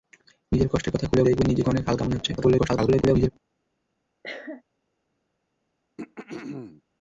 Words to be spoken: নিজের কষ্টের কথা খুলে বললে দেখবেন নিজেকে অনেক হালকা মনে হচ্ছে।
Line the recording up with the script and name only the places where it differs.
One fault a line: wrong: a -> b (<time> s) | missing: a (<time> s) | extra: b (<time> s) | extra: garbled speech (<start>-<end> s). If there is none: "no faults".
missing: বললে (1.3 s)
extra: garbled speech (2.4-3.3 s)